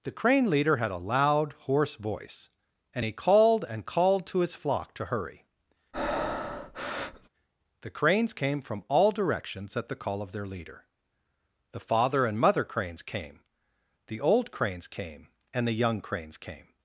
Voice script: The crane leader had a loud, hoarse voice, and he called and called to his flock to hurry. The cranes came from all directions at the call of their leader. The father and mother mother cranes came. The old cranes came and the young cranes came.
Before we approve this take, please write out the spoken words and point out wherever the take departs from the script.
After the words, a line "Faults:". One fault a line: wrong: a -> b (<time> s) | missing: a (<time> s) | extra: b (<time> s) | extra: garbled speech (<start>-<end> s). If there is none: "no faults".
The crane leader had a loud, hoarse voice, and he called and called to his flock to hurry. The cranes came from all directions at the call of their leader. The father and mother cranes came. The old cranes came and the young cranes came.
Faults:
missing: mother (12.6 s)